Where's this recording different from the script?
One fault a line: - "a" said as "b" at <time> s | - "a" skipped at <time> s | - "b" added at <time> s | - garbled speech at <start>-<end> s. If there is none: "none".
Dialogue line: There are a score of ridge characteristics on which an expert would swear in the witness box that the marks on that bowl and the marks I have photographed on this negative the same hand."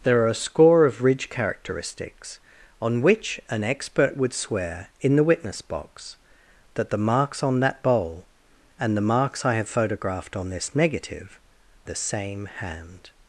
none